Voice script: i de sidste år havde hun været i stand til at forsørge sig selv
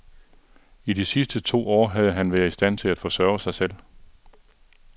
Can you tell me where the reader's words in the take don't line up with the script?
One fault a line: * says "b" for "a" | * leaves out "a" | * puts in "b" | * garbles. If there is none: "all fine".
* puts in "to"
* says "han" for "hun"